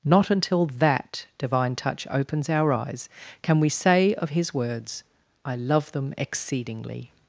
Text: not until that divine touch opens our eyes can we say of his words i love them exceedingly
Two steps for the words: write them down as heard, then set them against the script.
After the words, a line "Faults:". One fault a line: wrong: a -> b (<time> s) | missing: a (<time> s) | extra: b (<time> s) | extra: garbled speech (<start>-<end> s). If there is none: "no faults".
not until that divine touch opens our eyes can we say of his words i love them exceedingly
Faults:
no faults